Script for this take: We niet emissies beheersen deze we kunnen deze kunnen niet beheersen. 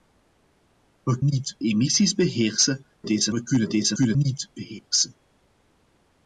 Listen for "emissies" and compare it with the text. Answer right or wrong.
right